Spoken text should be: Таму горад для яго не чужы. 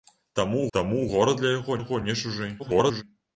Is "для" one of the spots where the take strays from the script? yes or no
no